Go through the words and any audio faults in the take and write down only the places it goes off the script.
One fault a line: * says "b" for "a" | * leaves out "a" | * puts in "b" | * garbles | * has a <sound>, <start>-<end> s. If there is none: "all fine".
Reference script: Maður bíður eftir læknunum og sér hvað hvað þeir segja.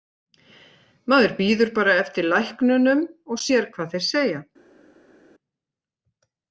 * puts in "bara"
* leaves out "hvað"